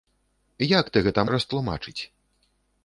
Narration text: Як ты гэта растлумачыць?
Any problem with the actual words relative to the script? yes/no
no